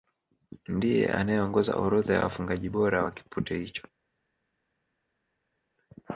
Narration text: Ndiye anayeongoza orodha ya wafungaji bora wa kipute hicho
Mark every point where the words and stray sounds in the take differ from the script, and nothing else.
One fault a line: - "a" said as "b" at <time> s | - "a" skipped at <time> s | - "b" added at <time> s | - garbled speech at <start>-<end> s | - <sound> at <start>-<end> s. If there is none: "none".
none